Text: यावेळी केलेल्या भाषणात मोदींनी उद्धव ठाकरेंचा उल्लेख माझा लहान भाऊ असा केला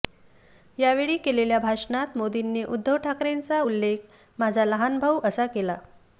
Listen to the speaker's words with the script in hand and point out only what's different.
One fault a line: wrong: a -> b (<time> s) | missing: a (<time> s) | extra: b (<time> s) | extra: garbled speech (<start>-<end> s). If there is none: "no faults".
no faults